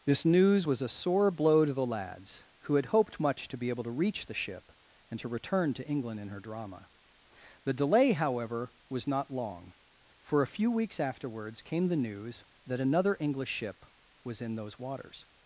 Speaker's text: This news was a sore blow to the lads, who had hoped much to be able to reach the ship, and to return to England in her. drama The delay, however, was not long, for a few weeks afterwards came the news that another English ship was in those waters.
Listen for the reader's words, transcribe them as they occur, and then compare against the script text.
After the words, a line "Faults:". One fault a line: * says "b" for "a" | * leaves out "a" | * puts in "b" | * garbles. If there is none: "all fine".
This news was a sore blow to the lads, who had hoped much to be able to reach the ship, and to return to England in her. drama The delay, however, was not long, for a few weeks afterwards came the news that another English ship was in those waters.
Faults:
all fine